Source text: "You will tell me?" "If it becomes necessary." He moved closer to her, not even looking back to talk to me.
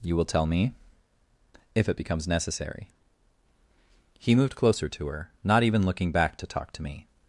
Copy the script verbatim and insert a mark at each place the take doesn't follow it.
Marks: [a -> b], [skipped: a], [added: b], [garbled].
"You will tell me?" "If it becomes necessary." He moved closer to her, not even looking back to talk to me.